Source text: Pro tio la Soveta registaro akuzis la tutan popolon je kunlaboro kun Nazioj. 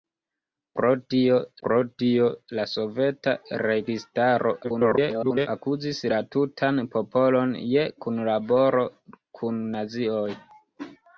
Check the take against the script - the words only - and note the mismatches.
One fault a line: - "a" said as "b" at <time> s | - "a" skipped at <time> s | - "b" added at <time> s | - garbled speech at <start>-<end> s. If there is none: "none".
- "pro tio" added at 1.6 s
- garbled speech at 4.6-5.5 s